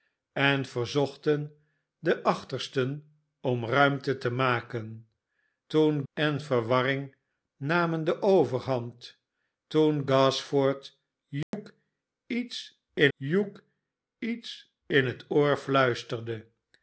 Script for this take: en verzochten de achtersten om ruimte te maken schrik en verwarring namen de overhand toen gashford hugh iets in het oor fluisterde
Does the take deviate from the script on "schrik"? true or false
true